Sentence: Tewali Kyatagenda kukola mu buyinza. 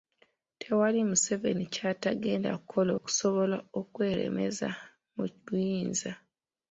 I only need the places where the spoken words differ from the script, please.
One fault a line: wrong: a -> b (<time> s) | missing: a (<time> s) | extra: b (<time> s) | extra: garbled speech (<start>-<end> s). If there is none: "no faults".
extra: Museveni (1.1 s)
extra: okusobola okweremeza (3.0 s)